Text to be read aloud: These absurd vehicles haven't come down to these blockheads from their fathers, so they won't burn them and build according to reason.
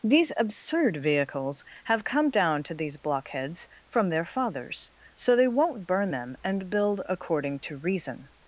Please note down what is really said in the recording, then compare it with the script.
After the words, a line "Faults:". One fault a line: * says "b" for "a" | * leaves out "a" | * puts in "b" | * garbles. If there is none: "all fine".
These absurd vehicles have come down to these blockheads from their fathers, so they won't burn them and build according to reason.
Faults:
* says "have" for "haven't"